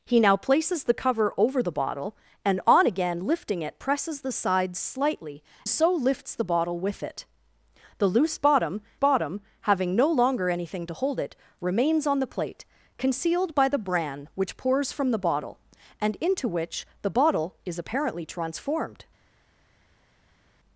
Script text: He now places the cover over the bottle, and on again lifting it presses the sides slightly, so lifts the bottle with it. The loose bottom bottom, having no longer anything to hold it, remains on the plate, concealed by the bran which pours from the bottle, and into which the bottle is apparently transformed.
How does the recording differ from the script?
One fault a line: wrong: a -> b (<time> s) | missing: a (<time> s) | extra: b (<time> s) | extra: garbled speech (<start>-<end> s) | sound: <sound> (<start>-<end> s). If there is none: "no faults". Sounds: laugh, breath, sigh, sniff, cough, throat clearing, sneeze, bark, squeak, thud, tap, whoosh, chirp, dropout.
no faults